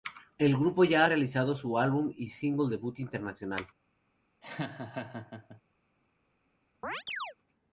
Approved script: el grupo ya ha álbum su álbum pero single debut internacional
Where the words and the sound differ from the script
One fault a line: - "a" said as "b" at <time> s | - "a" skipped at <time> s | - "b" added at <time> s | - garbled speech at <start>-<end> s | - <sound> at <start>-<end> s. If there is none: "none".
- "álbum" said as "realizado" at 1.1 s
- "pero" said as "y" at 2.1 s
- laugh at 4.4-5.6 s
- chirp at 6.8-7.3 s